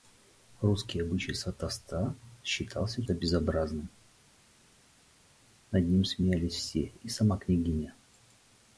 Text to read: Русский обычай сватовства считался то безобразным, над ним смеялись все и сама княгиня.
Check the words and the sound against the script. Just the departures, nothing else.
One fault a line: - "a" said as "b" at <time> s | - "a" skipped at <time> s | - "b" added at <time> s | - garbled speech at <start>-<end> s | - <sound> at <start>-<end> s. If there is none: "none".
none